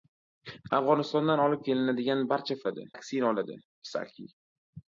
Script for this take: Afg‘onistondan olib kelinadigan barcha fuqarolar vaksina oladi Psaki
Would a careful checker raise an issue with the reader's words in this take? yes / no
yes